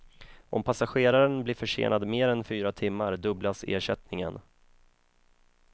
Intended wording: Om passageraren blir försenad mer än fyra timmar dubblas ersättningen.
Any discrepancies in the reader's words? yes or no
no